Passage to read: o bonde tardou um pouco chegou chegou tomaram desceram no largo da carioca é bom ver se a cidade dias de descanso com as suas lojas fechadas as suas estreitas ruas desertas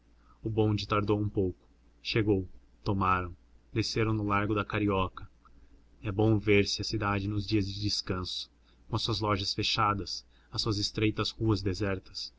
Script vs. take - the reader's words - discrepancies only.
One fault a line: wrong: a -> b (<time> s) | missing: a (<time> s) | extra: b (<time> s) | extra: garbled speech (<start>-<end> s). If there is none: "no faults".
missing: chegou (2.5 s)
extra: nos (7.3 s)